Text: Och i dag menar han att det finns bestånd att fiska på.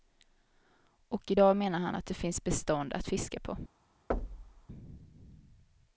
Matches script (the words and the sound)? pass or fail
fail